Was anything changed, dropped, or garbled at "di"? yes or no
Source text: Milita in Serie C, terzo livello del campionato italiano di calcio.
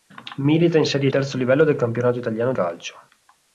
yes